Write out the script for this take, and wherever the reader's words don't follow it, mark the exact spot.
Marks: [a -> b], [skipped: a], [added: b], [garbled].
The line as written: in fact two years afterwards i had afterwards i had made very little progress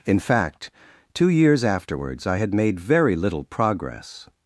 in fact two years afterwards i had [skipped: afterwards i had] made very little progress